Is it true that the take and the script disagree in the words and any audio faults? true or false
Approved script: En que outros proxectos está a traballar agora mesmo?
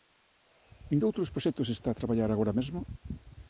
false